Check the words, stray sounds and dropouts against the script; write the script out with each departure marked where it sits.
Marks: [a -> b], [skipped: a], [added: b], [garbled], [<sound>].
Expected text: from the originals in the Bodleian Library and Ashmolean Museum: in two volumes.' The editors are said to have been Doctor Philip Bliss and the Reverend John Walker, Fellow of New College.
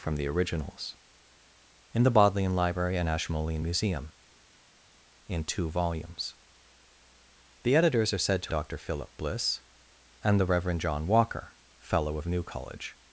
from the originals in the Bodleian Library and Ashmolean Museum: in two volumes.' The editors are said to [skipped: have been] Doctor Philip Bliss and the Reverend John Walker, Fellow of New College.